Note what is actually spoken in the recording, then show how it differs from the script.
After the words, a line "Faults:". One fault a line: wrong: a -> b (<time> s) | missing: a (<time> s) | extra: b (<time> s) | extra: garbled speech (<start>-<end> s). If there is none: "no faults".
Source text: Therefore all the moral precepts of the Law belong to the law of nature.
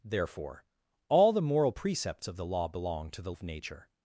Therefore all the moral precepts of the Law belong to the of nature.
Faults:
missing: law (3.3 s)